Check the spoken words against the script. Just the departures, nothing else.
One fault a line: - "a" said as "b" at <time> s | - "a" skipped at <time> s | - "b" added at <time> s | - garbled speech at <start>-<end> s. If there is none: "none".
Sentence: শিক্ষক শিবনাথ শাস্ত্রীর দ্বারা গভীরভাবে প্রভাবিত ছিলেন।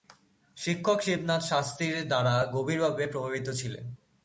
none